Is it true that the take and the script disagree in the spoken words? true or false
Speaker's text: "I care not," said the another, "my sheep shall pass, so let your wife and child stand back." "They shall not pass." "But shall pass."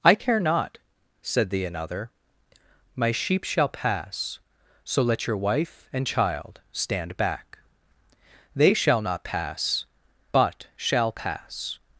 false